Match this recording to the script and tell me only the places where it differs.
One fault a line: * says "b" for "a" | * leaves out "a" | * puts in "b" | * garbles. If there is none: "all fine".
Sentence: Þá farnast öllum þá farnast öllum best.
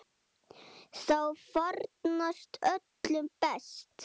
* leaves out "þá farnast öllum"